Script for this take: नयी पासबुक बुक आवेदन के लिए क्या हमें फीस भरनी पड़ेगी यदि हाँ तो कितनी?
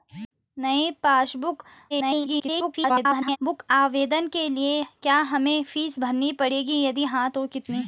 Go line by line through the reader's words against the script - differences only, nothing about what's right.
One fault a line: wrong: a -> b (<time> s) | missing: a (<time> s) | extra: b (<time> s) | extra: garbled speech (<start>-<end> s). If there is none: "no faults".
extra: garbled speech (1.9-3.4 s)